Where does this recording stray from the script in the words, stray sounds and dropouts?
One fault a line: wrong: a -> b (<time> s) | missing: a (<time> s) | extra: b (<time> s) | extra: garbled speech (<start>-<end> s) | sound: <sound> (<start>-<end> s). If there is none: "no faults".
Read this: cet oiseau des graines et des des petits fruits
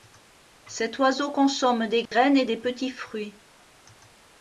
extra: consomme (1.3 s)
sound: dropout (2.1-2.1 s)
missing: des (2.6 s)